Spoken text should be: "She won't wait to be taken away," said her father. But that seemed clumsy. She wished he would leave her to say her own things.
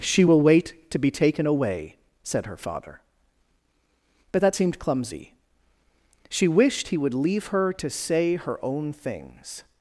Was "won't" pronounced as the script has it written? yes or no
no